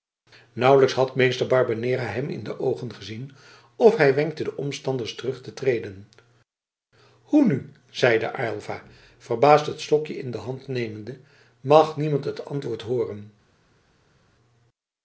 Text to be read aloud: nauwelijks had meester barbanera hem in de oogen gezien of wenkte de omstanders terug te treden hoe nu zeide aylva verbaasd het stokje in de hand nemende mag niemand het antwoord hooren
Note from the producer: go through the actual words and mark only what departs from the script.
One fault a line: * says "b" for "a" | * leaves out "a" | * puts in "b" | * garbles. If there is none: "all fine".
* puts in "hij"